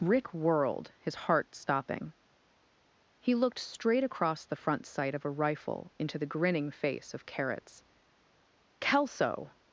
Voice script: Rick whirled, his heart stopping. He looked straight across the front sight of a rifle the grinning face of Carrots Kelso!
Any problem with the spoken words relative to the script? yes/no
yes